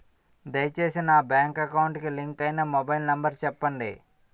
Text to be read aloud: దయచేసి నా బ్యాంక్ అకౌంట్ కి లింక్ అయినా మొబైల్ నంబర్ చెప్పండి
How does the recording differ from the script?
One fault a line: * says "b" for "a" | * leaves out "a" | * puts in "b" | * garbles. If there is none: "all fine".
all fine